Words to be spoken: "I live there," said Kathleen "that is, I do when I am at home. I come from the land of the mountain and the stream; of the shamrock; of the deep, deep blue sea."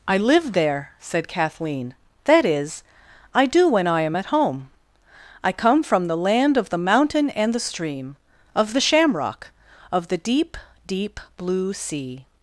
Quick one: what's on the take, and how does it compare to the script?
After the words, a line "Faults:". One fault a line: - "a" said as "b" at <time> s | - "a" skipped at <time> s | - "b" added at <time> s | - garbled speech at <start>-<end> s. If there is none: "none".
"I live there," said Kathleen "that is, I do when I am at home. I come from the land of the mountain and the stream; of the shamrock; of the deep, deep blue sea."
Faults:
none